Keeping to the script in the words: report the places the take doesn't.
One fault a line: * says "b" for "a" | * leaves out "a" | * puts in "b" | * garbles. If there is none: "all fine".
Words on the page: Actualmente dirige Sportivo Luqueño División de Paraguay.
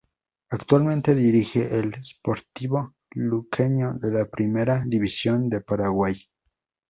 * puts in "al"
* puts in "de la Primera"